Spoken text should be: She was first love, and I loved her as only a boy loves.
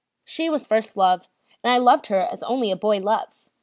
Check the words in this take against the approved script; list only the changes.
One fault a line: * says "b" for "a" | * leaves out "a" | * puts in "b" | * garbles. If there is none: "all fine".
all fine